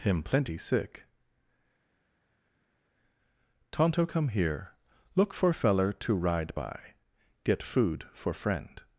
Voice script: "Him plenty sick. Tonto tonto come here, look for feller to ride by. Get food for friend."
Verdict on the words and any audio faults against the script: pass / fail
fail